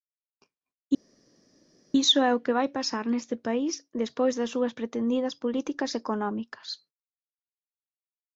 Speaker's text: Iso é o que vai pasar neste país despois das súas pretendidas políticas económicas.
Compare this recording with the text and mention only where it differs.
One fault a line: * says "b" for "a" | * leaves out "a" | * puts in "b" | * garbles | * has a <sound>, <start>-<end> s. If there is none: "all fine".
all fine